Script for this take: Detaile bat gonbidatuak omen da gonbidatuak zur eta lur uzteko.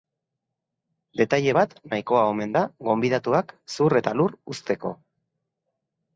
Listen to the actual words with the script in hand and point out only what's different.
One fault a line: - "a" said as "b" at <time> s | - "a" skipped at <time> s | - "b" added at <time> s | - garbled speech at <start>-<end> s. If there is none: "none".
- "gonbidatuak" said as "nahikoa" at 1.9 s